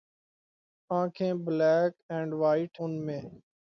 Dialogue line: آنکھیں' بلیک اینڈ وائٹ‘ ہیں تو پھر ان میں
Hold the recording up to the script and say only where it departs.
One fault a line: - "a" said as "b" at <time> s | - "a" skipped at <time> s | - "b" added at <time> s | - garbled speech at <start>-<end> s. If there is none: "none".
- "ہیں تو پھر" skipped at 2.8 s